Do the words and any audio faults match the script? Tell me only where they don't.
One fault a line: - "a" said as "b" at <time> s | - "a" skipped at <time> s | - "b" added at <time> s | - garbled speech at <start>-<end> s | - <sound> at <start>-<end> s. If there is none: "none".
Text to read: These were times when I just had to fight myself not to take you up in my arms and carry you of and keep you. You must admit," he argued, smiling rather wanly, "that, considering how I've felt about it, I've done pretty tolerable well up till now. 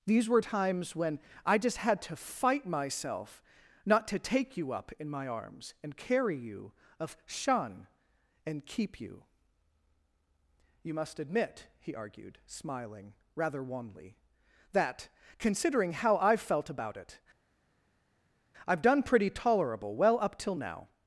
- "shun" added at 7.3 s